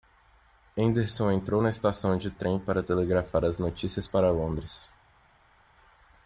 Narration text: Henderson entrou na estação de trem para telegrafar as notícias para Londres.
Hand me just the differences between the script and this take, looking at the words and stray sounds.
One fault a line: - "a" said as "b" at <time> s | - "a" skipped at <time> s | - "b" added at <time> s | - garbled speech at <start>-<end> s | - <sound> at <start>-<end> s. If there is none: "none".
none